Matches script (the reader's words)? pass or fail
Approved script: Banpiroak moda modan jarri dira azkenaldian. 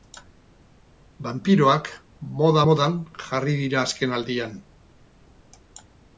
pass